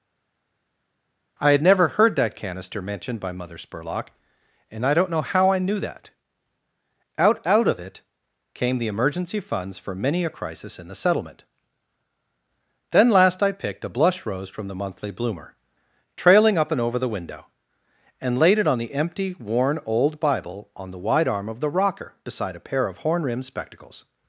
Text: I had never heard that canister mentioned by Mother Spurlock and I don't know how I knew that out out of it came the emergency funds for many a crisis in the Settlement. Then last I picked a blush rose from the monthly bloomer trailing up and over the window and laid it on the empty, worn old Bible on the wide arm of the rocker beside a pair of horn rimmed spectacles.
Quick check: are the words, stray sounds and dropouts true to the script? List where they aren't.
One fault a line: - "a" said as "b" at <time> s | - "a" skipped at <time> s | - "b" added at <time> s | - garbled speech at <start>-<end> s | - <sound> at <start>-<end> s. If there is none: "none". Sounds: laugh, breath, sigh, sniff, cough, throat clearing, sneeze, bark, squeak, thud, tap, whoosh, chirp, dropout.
none